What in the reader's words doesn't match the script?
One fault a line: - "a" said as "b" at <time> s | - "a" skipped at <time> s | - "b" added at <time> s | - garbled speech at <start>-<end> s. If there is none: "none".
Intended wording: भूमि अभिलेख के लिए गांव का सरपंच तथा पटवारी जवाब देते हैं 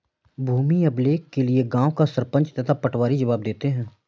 none